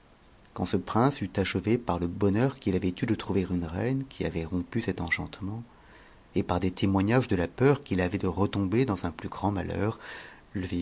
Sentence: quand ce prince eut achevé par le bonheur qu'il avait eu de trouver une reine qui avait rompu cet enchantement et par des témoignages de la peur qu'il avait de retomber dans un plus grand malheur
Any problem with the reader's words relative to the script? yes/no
no